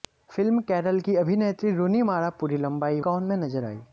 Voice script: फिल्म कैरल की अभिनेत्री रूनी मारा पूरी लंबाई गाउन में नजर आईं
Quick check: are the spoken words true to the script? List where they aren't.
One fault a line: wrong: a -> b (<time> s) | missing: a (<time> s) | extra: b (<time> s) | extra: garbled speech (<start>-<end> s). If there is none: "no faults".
no faults